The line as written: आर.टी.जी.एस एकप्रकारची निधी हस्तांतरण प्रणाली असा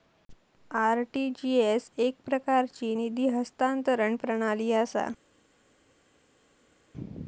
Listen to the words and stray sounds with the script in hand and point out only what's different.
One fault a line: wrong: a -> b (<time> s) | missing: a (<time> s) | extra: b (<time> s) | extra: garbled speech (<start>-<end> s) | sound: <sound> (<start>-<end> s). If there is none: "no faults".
no faults